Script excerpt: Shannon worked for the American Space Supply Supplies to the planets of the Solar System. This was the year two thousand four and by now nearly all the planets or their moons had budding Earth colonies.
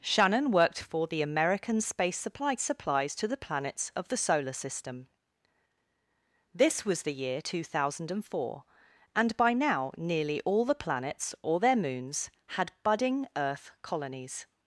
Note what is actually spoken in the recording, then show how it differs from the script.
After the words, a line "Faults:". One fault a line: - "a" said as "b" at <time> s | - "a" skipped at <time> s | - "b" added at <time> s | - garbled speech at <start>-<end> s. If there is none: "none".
Shannon worked for the American Space Supply Supplies to the planets of the Solar System. This was the year two thousand four and by now nearly all the planets or their moons had budding Earth colonies.
Faults:
none